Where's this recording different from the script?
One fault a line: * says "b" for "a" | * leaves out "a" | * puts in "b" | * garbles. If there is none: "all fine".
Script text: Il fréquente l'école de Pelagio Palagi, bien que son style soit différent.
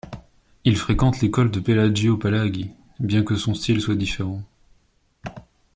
all fine